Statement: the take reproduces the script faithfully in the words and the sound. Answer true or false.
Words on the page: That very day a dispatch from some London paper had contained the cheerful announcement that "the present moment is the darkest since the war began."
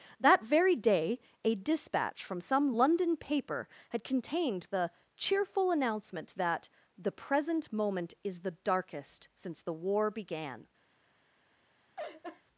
false